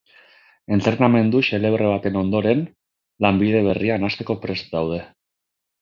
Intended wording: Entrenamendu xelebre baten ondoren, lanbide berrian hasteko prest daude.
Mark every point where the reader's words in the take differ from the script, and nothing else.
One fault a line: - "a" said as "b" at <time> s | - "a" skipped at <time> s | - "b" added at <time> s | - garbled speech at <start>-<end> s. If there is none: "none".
none